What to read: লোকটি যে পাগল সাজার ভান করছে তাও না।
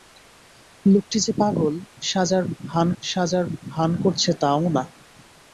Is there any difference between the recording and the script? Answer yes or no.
yes